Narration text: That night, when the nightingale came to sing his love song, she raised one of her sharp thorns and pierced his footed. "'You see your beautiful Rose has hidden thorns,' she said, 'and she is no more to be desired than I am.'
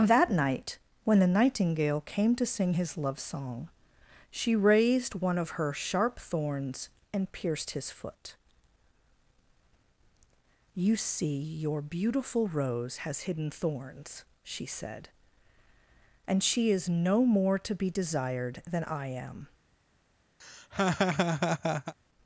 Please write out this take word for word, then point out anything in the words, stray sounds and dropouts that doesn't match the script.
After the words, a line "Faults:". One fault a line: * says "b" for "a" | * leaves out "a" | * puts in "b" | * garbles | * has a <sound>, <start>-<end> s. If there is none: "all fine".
That night, when the nightingale came to sing his love song, she raised one of her sharp thorns and pierced his foot. "'You see your beautiful Rose has hidden thorns,' she said, 'and she is no more to be desired than I am.'
Faults:
* says "foot" for "footed"
* has a laugh, 20.4-21.9 s